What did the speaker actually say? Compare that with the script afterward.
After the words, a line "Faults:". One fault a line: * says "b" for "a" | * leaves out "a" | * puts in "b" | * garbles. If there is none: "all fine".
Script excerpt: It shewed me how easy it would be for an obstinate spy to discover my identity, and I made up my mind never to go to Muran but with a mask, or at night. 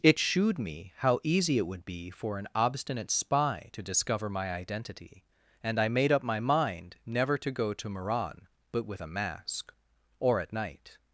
It shewed me how easy it would be for an obstinate spy to discover my identity, and I made up my mind never to go to Muran but with a mask, or at night.
Faults:
all fine